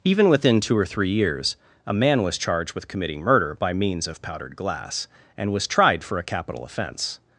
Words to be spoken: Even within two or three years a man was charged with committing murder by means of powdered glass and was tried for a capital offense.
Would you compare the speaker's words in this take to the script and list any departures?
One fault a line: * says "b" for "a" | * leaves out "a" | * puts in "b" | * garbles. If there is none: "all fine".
all fine